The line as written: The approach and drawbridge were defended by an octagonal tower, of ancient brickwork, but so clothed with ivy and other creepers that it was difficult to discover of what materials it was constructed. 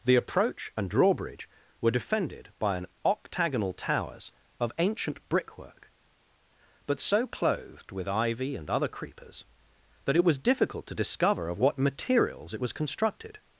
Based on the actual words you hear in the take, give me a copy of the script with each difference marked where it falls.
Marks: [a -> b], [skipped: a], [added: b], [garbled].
The approach and drawbridge were defended by an octagonal [tower, -> towers] of ancient brickwork, but so clothed with ivy and other creepers that it was difficult to discover of what materials it was constructed.